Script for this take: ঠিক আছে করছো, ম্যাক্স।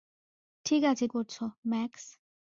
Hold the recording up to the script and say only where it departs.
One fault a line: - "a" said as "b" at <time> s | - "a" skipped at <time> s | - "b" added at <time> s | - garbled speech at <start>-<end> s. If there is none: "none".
none